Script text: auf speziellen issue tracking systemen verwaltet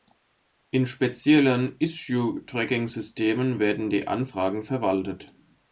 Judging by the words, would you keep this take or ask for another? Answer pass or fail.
fail